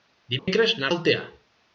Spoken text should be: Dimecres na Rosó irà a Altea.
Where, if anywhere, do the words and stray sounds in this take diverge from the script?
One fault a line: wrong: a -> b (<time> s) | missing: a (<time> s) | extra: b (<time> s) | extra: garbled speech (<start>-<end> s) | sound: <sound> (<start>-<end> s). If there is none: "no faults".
sound: dropout (0.4-0.5 s)
missing: Rosó irà a (0.9 s)